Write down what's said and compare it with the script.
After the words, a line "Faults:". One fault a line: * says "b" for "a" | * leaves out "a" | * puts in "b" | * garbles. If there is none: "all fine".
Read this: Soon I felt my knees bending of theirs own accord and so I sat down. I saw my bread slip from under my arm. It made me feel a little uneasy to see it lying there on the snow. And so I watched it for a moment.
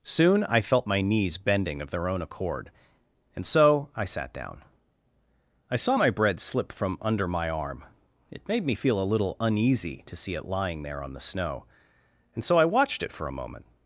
Soon I felt my knees bending of their own accord and so I sat down. I saw my bread slip from under my arm. It made me feel a little uneasy to see it lying there on the snow. And so I watched it for a moment.
Faults:
* says "their" for "theirs"